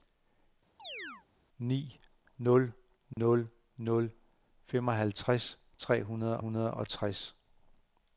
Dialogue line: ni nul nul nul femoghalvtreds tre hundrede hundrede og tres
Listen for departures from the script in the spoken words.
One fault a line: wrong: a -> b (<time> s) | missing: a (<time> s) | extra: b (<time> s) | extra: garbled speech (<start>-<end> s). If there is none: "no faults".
no faults